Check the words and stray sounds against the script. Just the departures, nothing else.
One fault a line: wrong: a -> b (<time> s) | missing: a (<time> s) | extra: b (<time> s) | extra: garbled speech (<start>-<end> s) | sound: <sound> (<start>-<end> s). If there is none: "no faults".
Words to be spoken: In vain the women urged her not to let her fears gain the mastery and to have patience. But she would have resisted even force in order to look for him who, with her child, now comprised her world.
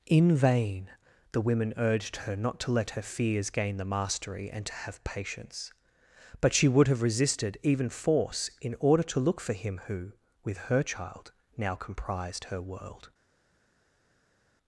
no faults